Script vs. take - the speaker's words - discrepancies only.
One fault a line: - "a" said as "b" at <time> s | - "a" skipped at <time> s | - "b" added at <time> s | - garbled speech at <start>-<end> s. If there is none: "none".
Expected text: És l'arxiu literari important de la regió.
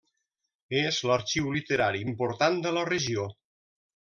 none